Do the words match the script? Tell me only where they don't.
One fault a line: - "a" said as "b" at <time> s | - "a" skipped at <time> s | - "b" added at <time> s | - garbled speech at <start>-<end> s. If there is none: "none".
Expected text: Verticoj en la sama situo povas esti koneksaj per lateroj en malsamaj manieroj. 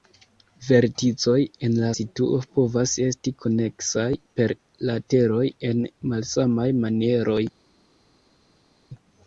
- "sama" skipped at 1.9 s